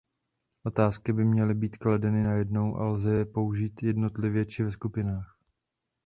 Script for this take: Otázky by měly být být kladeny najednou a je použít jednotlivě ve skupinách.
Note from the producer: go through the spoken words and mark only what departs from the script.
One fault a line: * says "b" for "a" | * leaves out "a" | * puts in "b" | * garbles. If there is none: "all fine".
* leaves out "být"
* puts in "lze"
* puts in "či"